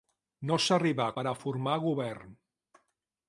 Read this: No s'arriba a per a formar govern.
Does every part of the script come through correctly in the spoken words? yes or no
yes